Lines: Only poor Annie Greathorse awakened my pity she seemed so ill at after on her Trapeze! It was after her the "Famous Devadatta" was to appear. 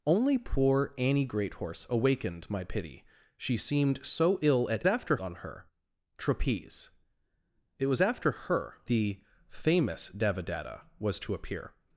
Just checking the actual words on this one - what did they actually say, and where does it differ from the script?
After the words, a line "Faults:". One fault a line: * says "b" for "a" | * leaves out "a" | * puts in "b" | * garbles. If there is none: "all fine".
Only poor Annie Greathorse awakened my pity she seemed so ill at after on her Trapeze! It was after her the "Famous Devadatta" was to appear.
Faults:
all fine